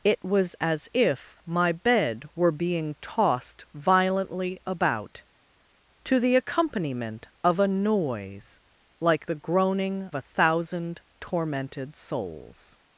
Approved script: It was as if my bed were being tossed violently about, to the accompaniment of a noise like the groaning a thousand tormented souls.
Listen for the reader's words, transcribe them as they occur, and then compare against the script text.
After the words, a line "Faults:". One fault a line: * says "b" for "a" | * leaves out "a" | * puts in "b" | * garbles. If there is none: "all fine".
It was as if my bed were being tossed violently about, to the accompaniment of a noise like the groaning a thousand tormented souls.
Faults:
all fine